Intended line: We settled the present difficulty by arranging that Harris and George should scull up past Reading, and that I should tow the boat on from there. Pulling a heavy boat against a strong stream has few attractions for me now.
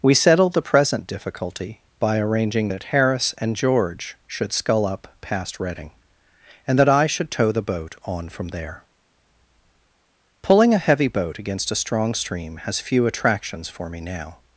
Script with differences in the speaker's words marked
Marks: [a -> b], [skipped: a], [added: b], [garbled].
We settled the present difficulty by arranging that Harris and George should scull up past Reading, and that I should tow the boat on from there. Pulling a heavy boat against a strong stream has few attractions for me now.